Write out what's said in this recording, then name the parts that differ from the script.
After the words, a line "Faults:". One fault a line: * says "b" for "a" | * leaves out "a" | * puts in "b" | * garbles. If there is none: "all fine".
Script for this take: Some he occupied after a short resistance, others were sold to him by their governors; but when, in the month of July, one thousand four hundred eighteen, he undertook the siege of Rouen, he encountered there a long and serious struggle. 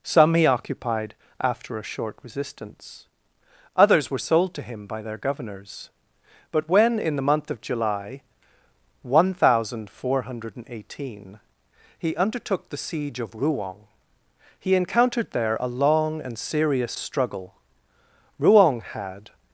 Some he occupied after a short resistance, others were sold to him by their governors; but when, in the month of July, one thousand four hundred eighteen, he undertook the siege of Rouen, he encountered there a long and serious struggle. Rouen had
Faults:
* puts in "Rouen had"